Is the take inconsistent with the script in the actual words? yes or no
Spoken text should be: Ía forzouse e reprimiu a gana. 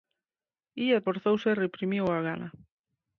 no